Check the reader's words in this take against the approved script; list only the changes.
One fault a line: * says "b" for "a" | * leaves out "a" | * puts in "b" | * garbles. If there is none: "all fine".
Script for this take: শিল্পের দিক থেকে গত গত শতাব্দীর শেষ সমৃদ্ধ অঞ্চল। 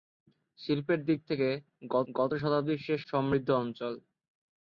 all fine